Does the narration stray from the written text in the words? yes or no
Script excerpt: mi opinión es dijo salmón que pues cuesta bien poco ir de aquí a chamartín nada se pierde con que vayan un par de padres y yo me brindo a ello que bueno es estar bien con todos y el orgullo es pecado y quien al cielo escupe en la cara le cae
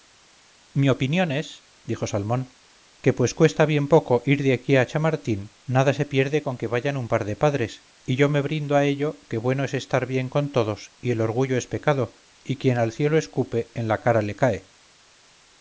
no